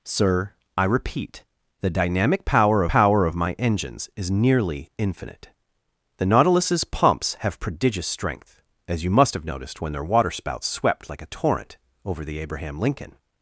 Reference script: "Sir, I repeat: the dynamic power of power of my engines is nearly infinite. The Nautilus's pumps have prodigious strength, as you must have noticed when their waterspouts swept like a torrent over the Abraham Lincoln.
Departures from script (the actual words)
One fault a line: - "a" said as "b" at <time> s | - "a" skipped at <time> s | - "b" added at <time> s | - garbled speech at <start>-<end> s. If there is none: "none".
none